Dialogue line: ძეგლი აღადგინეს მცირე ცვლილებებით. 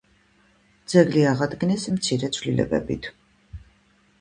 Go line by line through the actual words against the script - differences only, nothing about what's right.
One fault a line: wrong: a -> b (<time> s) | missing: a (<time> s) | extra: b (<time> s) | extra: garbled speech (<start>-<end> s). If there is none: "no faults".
no faults